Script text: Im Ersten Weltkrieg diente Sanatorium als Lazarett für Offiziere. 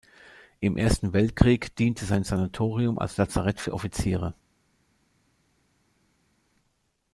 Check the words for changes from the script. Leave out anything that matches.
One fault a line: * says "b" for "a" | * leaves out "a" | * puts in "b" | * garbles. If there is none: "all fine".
* puts in "sein"